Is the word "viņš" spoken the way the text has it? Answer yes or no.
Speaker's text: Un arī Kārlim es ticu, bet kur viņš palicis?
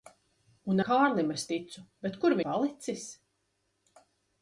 no